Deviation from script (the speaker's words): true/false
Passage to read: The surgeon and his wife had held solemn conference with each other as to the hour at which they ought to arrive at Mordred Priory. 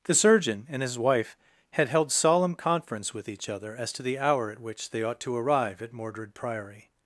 false